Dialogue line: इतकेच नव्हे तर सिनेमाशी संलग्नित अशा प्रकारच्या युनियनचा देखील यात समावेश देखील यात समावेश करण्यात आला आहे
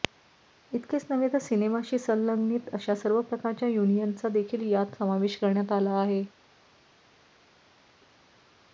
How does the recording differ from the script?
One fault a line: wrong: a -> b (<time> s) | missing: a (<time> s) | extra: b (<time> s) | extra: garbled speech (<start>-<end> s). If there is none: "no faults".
extra: सर्व (3.0 s)
missing: देखील यात समावेश (5.4 s)